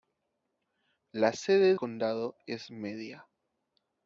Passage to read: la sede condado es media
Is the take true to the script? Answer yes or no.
yes